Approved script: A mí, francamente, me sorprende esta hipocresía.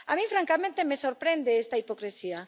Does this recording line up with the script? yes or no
yes